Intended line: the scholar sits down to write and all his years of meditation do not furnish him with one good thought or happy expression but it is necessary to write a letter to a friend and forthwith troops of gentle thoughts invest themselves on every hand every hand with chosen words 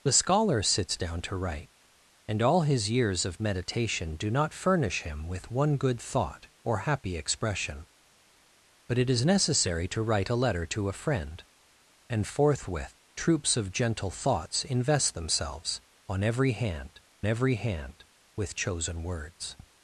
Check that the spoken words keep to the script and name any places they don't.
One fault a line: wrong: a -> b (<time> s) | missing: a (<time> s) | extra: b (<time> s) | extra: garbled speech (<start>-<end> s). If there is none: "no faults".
no faults